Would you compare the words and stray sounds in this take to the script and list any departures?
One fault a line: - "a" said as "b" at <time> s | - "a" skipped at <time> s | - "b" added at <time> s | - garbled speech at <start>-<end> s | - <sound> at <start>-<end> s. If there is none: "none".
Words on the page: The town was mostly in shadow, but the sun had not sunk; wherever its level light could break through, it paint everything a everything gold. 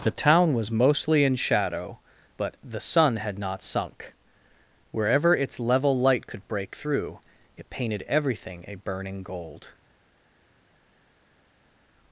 - "paint" said as "painted" at 7.7 s
- "everything" said as "burning" at 8.8 s